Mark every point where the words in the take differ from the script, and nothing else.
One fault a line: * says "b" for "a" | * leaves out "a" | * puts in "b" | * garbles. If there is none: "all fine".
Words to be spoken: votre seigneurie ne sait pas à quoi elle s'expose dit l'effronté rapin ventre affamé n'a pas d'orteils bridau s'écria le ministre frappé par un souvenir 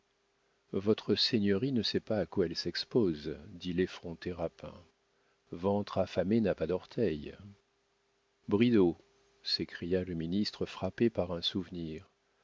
all fine